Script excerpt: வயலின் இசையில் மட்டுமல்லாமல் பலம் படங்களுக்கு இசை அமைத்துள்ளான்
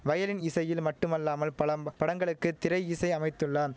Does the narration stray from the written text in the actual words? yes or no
yes